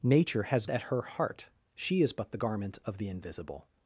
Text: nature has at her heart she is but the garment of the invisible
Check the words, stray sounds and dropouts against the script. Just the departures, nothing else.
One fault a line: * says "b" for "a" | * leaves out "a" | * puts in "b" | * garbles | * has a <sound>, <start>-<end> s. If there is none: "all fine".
all fine